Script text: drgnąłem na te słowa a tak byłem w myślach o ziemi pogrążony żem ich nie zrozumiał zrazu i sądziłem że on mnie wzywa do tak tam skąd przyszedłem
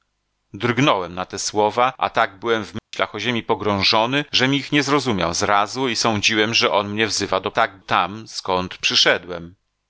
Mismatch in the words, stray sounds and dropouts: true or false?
true